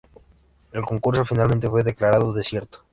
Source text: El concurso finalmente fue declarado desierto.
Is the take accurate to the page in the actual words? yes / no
yes